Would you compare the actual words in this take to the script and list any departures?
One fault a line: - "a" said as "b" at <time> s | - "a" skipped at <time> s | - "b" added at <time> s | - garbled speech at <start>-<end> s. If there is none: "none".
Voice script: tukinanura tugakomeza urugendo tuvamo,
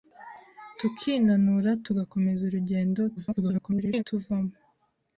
- garbled speech at 3.2-4.0 s